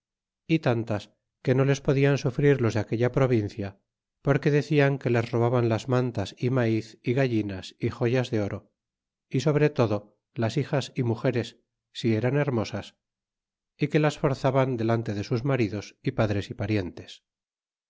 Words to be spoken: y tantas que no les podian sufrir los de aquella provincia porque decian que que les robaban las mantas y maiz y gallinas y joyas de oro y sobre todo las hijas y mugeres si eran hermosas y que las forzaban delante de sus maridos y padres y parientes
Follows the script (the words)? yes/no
no